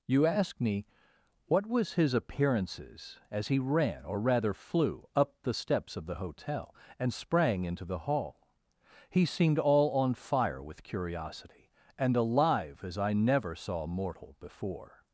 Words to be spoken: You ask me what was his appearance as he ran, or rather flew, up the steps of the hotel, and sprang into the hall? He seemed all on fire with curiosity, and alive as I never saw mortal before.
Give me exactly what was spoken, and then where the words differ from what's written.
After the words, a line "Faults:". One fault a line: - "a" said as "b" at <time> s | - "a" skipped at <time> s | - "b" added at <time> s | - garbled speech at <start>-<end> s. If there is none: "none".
You ask me what was his appearances as he ran, or rather flew, up the steps of the hotel, and sprang into the hall? He seemed all on fire with curiosity, and alive as I never saw mortal before.
Faults:
- "appearance" said as "appearances" at 2.1 s